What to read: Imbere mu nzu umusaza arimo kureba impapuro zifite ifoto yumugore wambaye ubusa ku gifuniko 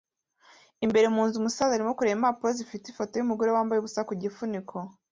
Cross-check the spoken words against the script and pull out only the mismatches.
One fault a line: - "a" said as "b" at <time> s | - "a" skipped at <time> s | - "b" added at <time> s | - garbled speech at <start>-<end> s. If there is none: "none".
none